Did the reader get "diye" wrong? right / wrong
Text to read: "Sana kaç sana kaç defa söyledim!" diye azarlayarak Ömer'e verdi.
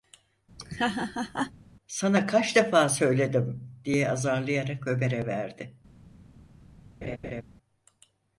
right